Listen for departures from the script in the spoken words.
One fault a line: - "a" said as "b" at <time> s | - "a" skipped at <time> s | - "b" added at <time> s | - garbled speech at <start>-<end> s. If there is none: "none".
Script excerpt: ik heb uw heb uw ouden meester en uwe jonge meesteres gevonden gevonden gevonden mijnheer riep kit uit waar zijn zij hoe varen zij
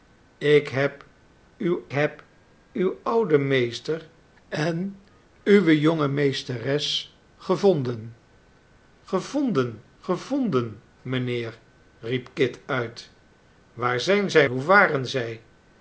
none